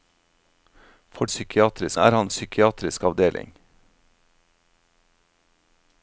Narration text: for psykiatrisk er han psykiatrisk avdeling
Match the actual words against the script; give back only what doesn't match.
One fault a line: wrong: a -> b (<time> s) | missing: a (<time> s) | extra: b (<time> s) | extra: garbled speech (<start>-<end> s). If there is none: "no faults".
no faults